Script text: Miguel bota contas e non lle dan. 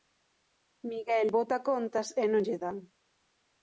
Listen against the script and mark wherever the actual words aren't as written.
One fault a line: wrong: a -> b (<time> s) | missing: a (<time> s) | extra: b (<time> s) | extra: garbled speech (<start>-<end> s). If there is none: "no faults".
no faults